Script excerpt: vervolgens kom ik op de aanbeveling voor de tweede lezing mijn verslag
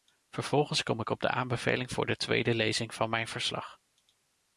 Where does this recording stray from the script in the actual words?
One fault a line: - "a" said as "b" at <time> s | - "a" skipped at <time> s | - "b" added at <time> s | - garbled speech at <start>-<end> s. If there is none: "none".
- "van" added at 2.9 s